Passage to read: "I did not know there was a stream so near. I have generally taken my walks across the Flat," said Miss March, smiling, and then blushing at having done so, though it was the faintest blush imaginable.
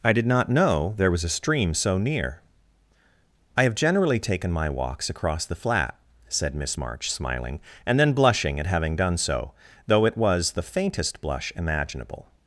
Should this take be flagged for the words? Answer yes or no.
no